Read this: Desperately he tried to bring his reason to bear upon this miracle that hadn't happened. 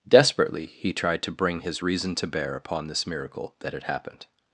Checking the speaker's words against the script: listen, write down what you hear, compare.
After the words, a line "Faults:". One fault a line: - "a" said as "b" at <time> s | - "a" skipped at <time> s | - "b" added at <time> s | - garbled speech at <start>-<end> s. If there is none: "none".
Desperately he tried to bring his reason to bear upon this miracle that had happened.
Faults:
- "hadn't" said as "had" at 3.7 s